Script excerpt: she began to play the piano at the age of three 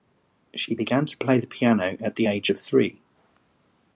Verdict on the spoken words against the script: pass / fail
pass